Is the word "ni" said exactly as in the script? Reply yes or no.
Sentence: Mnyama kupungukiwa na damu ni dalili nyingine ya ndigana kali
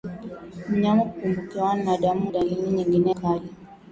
no